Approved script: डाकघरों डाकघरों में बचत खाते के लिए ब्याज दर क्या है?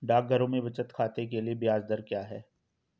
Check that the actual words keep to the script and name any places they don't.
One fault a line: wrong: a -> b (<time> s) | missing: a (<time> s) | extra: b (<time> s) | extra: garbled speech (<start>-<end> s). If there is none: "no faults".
missing: डाकघरों (0.5 s)